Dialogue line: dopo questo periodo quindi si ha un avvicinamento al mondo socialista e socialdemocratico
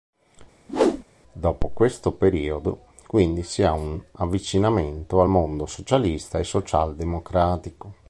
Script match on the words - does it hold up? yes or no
yes